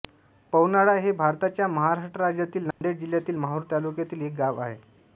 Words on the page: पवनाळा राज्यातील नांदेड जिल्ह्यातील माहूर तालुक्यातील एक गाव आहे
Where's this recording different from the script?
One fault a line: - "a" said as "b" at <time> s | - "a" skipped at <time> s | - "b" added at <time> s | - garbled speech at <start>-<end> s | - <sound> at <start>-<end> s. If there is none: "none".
- "हे भारताच्या महाराष्ट्र" added at 0.9 s
- dropout at 2.7-2.8 s